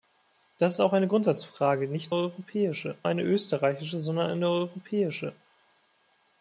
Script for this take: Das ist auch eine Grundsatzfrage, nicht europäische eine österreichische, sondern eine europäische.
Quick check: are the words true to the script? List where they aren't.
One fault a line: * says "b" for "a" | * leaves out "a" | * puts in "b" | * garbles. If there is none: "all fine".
all fine